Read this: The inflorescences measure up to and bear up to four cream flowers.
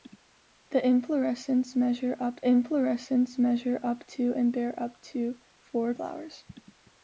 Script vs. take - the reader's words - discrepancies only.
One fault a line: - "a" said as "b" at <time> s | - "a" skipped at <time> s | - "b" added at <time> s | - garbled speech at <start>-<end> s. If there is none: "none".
- "inflorescences measure up" added at 2.4 s
- "cream" skipped at 5.9 s